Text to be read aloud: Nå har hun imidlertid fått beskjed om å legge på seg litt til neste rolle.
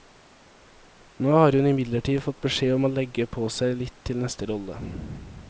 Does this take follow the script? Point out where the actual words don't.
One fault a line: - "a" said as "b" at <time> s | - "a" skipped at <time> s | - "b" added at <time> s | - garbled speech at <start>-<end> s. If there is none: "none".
none